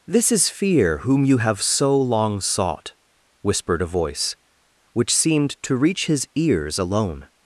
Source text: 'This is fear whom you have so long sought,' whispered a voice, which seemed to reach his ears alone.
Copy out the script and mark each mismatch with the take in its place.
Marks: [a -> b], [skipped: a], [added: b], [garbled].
'This is fear whom you have so long sought,' whispered a voice, which seemed to reach his ears alone.